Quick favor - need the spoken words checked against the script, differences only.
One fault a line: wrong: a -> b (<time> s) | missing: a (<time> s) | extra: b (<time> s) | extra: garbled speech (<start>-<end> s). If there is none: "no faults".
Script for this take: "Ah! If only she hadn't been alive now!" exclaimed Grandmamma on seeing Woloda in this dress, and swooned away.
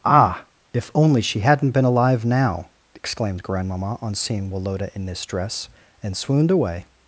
no faults